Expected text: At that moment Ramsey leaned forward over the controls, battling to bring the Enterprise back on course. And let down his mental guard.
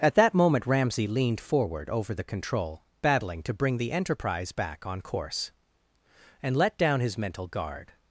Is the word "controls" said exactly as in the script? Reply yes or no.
no